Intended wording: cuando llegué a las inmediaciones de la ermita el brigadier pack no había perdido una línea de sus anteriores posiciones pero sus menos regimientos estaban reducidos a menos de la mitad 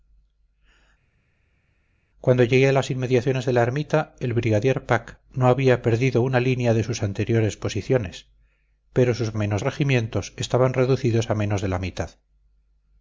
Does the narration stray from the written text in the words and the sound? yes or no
no